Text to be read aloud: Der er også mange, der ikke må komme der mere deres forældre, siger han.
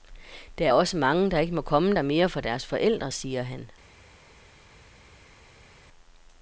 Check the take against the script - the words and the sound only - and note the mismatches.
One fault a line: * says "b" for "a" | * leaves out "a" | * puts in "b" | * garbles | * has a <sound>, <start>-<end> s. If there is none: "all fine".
* puts in "for"